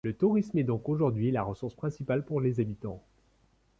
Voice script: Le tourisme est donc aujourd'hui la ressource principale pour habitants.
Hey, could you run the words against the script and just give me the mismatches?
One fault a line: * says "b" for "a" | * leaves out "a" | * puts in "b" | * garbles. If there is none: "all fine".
* puts in "les"